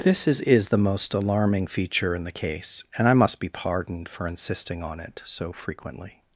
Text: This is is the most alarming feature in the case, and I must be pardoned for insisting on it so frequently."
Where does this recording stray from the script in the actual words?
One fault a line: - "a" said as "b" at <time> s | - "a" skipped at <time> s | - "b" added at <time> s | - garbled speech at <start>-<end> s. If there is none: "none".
none